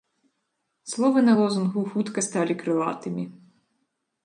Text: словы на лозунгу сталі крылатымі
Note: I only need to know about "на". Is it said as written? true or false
true